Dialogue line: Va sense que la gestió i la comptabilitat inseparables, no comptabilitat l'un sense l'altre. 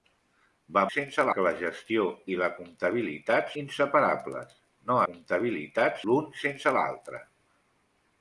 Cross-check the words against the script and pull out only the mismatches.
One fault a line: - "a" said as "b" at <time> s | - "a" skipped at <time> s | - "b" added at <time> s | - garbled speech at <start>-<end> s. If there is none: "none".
none